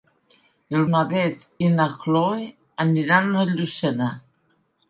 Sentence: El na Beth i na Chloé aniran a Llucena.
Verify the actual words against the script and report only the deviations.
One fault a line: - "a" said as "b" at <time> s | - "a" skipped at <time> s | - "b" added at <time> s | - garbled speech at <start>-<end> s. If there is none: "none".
none